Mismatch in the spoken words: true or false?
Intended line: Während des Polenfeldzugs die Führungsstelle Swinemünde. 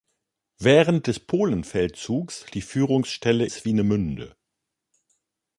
false